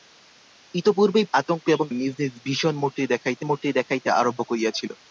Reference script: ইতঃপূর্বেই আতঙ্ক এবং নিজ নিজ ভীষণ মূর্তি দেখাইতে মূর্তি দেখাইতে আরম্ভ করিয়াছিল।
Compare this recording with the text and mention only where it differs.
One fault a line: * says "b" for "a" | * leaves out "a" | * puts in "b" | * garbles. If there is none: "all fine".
all fine